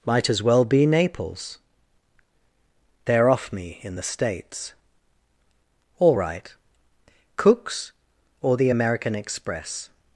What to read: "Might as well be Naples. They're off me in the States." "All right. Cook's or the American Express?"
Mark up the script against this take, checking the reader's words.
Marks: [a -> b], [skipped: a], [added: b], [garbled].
"Might as well be Naples. They're off me in the States." "All right. Cook's or the American Express?"